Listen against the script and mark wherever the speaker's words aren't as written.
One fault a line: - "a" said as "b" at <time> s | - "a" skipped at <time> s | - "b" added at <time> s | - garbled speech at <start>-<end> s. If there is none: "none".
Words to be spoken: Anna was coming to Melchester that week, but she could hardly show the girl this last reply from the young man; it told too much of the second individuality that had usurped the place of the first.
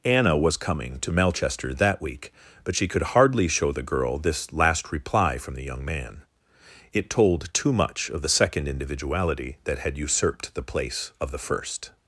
none